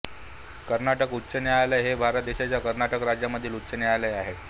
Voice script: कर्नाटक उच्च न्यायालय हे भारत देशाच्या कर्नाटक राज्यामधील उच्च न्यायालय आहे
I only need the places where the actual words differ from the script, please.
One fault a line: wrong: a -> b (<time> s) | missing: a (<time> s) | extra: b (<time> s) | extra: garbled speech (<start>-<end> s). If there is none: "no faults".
no faults